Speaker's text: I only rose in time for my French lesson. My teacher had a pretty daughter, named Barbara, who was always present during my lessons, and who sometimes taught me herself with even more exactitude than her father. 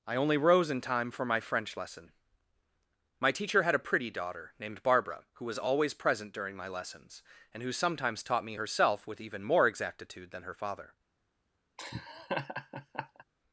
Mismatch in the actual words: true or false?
false